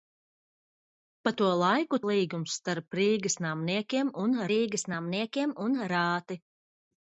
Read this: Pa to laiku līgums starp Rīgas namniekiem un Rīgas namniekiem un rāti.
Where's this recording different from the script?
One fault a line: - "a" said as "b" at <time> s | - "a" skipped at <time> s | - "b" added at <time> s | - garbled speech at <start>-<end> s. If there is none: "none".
none